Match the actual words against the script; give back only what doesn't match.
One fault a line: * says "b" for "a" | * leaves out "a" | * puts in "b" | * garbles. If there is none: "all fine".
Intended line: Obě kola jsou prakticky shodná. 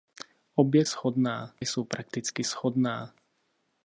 * says "shodná" for "kola"